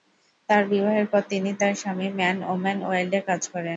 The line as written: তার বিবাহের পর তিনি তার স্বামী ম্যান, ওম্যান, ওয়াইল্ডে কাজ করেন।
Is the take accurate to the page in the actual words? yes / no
yes